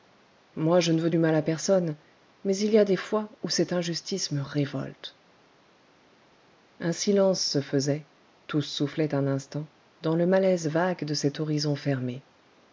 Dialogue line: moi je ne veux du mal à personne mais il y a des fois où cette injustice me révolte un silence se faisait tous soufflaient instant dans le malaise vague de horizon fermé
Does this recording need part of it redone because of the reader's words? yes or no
yes